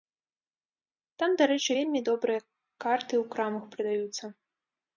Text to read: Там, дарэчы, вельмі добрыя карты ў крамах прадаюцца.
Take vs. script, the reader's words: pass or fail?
pass